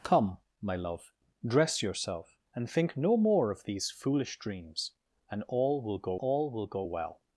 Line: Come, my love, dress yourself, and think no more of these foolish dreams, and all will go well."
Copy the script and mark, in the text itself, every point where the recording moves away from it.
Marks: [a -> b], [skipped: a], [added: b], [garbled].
Come, my love, dress yourself, and think no more of these foolish dreams, and all will go [added: all will go] well."